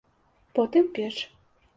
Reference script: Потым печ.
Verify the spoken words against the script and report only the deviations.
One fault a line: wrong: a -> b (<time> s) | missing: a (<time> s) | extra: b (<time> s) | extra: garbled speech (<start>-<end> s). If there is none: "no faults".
no faults